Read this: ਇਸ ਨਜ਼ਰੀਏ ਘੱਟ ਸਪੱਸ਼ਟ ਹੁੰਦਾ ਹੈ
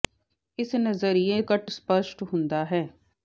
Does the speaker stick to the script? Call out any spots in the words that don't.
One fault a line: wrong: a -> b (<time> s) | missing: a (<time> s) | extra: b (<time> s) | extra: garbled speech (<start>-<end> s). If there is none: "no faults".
no faults